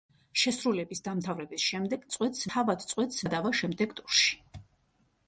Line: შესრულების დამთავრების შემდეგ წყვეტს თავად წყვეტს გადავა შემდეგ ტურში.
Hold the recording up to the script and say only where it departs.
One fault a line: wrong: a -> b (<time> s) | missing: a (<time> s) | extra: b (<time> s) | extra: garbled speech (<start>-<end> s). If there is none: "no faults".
no faults